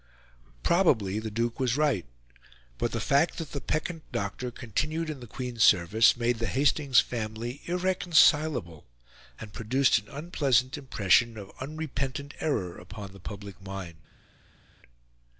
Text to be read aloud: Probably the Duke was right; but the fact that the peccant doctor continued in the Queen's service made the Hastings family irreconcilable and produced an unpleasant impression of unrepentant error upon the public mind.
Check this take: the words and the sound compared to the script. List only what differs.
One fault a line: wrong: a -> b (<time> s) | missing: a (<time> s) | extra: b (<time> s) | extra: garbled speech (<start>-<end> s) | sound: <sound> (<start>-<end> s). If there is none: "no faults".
no faults